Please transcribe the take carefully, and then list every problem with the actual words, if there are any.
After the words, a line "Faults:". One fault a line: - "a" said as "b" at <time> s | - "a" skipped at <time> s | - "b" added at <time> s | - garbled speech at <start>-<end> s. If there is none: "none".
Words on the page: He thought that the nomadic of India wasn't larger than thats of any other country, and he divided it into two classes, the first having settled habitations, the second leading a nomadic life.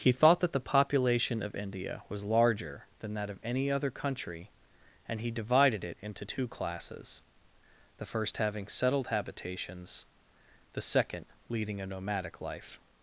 He thought that the population of India was larger than that of any other country, and he divided it into two classes, the first having settled habitations, the second leading a nomadic life.
Faults:
- "nomadic" said as "population" at 0.6 s
- "wasn't" said as "was" at 2.1 s
- "thats" said as "that" at 3.1 s